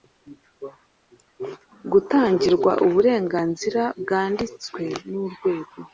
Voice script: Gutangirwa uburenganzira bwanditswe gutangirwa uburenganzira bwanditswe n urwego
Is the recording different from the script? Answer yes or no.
yes